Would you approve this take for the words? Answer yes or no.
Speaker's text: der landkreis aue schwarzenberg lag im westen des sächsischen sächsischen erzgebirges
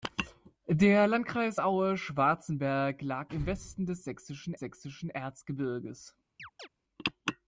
yes